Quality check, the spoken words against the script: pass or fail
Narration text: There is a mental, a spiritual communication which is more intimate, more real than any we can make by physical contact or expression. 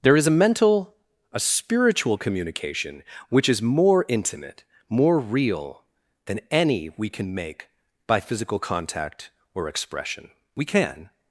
fail